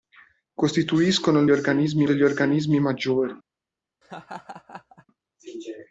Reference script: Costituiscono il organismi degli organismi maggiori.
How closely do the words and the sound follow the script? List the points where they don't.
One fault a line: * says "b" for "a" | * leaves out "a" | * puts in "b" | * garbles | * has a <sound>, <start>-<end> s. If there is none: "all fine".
* has a laugh, 4.0-5.1 s